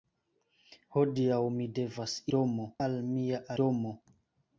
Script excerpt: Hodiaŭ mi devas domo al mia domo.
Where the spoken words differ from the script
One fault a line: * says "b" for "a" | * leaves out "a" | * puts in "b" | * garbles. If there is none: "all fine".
all fine